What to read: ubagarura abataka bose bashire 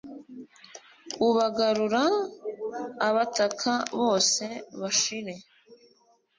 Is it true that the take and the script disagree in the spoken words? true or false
false